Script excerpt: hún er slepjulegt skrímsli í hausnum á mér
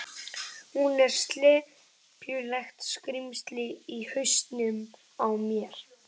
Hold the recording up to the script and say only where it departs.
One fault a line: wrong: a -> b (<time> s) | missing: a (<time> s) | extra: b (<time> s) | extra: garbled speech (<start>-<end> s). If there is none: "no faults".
no faults